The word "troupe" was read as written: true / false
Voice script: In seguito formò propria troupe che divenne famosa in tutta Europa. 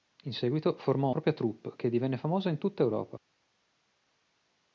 true